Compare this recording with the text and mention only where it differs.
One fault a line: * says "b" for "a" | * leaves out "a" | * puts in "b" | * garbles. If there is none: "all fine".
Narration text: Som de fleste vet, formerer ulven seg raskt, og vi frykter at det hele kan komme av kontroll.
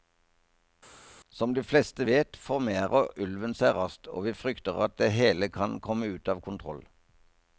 * puts in "ut"